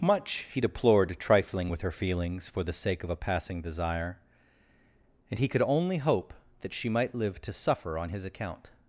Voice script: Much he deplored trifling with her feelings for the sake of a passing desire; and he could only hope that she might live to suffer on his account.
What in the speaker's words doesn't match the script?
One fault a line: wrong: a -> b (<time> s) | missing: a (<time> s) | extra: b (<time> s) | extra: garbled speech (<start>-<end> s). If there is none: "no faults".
no faults